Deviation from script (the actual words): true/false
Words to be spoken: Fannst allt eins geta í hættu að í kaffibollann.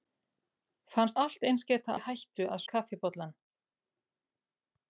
false